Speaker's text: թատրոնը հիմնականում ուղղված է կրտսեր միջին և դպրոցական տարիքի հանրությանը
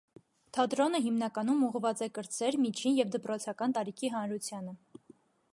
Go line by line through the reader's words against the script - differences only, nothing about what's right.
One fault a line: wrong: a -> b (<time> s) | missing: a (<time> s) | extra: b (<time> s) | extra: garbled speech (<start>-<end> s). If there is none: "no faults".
no faults